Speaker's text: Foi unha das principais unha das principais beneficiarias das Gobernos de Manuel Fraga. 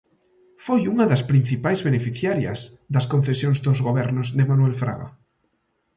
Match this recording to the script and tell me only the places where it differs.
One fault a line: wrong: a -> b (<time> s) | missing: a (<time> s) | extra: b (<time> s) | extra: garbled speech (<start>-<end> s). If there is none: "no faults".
wrong: unha -> beneficiarias (1.9 s)
wrong: principais beneficiarias das -> concesións dos (3.1 s)